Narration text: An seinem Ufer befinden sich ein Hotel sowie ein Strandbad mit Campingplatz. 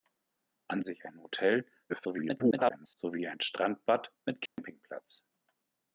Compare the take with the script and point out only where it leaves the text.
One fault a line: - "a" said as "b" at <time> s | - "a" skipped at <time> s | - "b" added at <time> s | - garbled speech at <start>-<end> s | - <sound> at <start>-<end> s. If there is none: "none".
- "seinem Ufer befinden" skipped at 0.8 s
- garbled speech at 1.9-3.0 s
- dropout at 4.5-4.6 s